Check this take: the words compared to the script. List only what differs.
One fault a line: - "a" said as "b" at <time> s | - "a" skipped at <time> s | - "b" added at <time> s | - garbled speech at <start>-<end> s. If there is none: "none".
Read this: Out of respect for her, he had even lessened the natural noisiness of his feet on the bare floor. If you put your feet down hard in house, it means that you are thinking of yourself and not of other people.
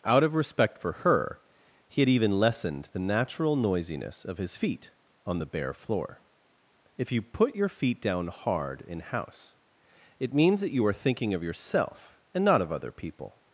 none